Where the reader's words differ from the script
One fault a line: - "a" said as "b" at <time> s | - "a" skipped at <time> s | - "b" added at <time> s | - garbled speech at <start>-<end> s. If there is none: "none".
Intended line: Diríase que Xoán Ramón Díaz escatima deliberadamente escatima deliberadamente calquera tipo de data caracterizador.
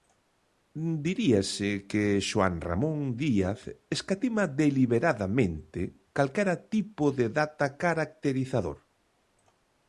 - "escatima deliberadamente" skipped at 5.8 s